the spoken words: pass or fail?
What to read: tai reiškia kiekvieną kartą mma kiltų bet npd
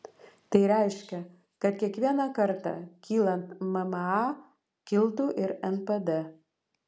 fail